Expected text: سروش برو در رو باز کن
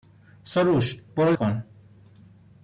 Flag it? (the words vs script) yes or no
yes